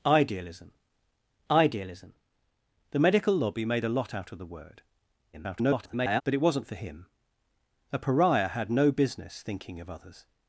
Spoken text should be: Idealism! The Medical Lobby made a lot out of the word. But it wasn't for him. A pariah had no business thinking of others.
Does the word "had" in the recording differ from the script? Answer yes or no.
no